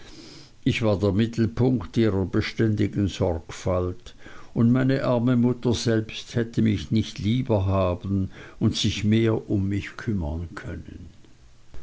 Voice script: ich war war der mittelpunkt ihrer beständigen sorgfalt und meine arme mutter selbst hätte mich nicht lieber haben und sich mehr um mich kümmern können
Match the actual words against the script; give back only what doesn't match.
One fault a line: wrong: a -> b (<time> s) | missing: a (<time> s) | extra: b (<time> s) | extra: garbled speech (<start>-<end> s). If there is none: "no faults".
missing: war (1.0 s)